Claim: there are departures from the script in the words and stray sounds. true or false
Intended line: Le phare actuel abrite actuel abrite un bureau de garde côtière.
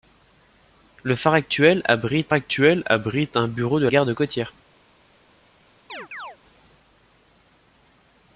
true